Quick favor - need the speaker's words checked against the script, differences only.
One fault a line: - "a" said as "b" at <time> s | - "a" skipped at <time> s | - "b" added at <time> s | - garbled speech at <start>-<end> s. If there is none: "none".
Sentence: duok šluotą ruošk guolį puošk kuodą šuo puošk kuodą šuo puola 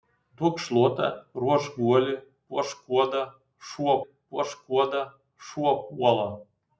none